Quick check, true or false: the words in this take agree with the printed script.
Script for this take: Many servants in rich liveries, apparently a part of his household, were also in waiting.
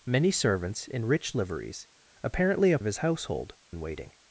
false